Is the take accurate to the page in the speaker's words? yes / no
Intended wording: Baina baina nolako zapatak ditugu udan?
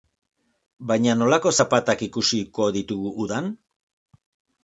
no